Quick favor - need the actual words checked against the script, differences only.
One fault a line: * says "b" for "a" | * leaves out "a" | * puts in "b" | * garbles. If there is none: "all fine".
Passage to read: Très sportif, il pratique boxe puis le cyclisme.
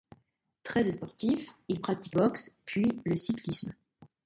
all fine